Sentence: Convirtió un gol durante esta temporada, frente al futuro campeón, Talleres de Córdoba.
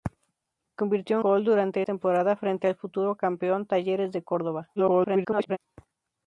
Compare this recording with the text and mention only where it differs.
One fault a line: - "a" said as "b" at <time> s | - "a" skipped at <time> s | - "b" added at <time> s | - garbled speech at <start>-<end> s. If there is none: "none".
- "un" skipped at 1.2 s
- "esta" skipped at 1.8 s
- garbled speech at 4.8-5.6 s